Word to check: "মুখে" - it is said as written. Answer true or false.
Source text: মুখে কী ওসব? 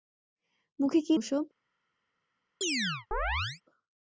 true